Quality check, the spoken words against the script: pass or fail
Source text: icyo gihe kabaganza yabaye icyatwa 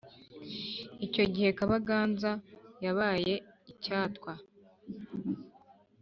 pass